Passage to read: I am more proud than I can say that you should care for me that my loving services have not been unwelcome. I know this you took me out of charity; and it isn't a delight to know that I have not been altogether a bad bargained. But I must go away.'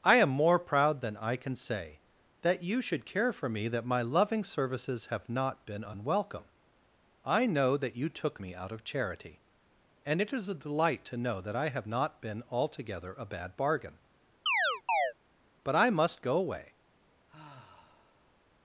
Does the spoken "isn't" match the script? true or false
false